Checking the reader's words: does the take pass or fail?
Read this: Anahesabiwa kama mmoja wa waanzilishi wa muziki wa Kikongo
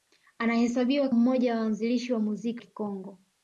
fail